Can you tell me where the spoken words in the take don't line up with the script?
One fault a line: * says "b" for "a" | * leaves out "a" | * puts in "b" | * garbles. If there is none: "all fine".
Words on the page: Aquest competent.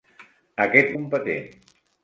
all fine